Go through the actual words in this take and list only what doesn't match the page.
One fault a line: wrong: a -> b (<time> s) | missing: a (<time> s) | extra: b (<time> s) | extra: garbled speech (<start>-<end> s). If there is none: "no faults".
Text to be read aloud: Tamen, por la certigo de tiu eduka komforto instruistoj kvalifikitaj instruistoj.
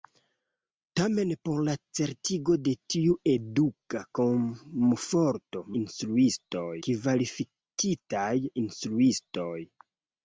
no faults